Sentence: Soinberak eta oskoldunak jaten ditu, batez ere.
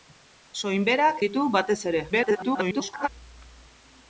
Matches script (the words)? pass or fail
fail